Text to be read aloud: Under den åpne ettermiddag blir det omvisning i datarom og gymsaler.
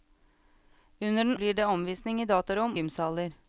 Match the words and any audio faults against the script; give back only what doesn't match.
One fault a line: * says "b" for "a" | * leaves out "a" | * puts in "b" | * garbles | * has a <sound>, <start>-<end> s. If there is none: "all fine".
* leaves out "åpne ettermiddag"
* leaves out "og"